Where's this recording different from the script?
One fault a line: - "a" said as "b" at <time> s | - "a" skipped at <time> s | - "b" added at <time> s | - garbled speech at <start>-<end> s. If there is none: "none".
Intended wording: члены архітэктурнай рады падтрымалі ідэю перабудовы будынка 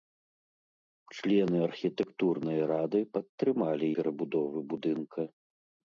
- "ідэю" skipped at 3.9 s